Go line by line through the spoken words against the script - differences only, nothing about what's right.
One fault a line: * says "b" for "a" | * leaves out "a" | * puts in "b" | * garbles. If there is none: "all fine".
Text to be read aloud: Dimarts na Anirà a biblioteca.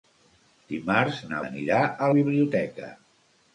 all fine